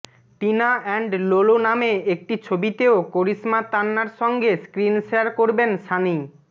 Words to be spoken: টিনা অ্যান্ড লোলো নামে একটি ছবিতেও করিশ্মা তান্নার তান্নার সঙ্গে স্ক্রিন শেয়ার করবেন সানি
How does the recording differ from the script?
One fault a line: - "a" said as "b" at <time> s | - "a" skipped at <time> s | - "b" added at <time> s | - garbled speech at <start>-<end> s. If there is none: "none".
- "তান্নার" skipped at 4.1 s